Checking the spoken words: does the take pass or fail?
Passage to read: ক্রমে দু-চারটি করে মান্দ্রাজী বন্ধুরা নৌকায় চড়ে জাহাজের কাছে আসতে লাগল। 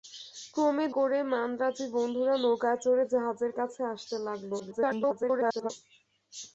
fail